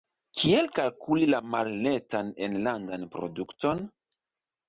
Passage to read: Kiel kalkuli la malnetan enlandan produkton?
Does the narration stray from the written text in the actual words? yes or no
no